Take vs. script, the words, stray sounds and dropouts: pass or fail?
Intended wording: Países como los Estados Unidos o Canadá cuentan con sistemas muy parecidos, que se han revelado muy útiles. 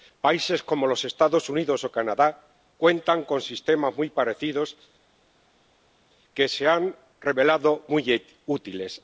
pass